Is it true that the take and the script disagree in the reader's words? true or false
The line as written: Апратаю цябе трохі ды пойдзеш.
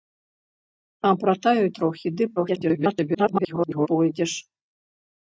true